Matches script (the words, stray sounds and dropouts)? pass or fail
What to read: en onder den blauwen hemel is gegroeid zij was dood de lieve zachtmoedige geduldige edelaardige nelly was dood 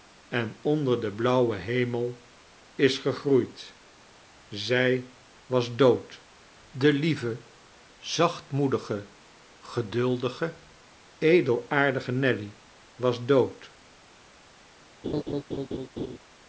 fail